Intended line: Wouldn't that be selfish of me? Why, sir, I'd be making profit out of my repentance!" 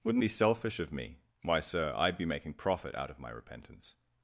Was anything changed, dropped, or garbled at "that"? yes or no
yes